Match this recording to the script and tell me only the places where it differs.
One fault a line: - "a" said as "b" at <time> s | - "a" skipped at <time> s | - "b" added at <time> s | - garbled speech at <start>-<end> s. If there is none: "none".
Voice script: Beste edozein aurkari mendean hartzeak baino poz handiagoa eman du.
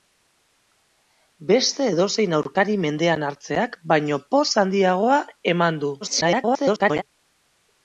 - garbled speech at 6.0-7.0 s